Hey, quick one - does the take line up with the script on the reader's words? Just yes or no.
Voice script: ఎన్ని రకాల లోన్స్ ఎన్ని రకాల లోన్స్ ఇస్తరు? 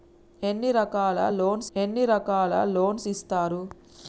yes